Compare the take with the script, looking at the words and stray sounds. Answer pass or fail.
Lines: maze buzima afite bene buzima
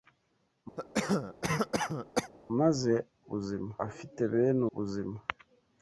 fail